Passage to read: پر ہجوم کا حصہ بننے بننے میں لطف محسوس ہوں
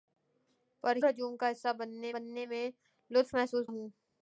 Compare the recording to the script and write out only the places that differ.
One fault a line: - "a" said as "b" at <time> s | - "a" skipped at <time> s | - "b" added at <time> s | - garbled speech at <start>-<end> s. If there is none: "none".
none